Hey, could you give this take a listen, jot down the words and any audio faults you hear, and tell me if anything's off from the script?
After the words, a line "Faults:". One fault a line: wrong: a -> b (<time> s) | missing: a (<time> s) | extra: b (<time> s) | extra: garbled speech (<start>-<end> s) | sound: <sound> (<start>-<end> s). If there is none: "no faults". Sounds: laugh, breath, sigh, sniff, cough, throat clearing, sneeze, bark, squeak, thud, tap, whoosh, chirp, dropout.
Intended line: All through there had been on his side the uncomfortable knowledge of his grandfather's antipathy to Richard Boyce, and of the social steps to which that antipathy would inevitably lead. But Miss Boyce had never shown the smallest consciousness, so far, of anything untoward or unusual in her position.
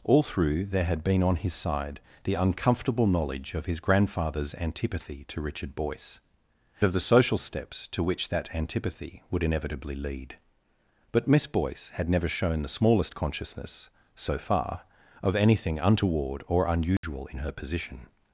All through there had been on his side the uncomfortable knowledge of his grandfather's antipathy to Richard Boyce, of the social steps to which that antipathy would inevitably lead. But Miss Boyce had never shown the smallest consciousness, so far, of anything untoward or unusual in her position.
Faults:
missing: and (6.2 s)
sound: dropout (17.0-17.0 s)